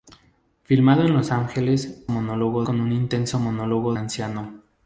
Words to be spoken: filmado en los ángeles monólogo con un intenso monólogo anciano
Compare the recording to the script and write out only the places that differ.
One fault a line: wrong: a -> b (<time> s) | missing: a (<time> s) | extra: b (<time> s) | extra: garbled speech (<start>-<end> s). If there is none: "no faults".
no faults